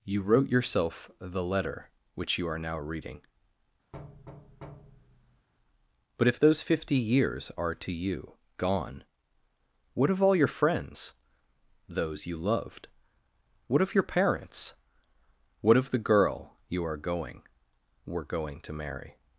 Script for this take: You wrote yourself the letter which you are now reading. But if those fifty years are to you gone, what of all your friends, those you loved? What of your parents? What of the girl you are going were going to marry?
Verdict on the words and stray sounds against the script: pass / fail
fail